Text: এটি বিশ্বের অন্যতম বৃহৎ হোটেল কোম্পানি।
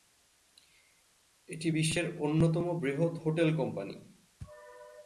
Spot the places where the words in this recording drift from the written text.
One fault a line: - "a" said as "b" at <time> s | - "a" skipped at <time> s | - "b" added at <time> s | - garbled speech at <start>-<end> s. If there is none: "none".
none